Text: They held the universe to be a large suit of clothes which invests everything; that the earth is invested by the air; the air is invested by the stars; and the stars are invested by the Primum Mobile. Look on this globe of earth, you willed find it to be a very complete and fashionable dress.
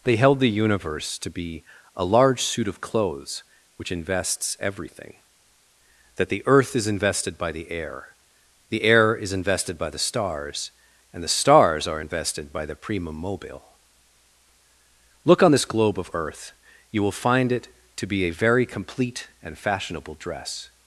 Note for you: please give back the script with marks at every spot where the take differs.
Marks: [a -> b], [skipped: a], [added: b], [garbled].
They held the universe to be a large suit of clothes which invests everything; that the earth is invested by the air; the air is invested by the stars; and the stars are invested by the Primum Mobile. Look on this globe of earth, you [willed -> will] find it to be a very complete and fashionable dress.